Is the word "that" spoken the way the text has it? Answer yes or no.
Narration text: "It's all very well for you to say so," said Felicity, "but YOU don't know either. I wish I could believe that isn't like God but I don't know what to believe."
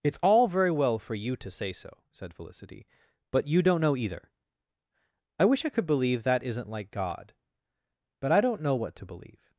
yes